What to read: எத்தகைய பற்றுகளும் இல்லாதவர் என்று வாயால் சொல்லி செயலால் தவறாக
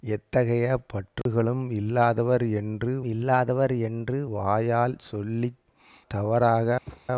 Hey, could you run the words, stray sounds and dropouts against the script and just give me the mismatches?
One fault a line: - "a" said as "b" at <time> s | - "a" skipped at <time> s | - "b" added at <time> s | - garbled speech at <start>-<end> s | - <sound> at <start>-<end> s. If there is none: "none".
- dropout at 1.2-1.3 s
- "இல்லாதவர் என்று" added at 3.0 s
- "செயலால்" skipped at 5.5 s
- thud at 6.9-7.0 s